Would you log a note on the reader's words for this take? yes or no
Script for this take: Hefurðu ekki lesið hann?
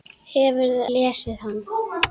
yes